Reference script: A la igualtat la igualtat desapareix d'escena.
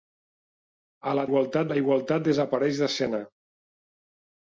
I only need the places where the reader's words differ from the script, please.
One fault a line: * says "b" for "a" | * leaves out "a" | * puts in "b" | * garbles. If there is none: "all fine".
all fine